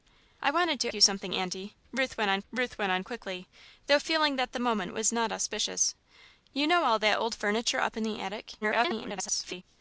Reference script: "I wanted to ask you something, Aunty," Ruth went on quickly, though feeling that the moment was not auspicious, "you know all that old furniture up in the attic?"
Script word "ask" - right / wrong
wrong